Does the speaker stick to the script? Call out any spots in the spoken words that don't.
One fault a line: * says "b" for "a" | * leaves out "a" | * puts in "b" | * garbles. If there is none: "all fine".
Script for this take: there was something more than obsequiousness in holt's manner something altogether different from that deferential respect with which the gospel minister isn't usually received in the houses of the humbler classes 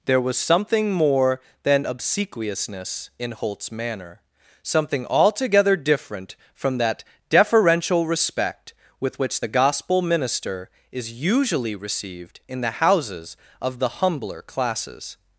* says "is" for "isn't"